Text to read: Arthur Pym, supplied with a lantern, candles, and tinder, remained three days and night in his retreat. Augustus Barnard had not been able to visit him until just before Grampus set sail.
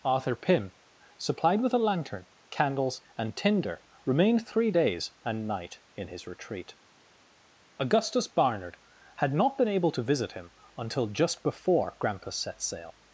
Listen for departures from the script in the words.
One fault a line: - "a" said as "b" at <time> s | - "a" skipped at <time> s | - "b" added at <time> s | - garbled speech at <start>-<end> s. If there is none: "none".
none